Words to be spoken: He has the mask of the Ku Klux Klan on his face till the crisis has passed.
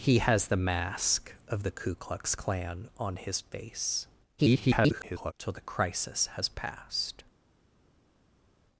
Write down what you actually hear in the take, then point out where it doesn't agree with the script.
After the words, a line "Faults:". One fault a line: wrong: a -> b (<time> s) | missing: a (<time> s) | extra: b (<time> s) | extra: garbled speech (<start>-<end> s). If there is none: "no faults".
He has the mask of the Ku Klux Klan on his face [garbled] till the crisis has passed.
Faults:
extra: garbled speech (4.4-5.3 s)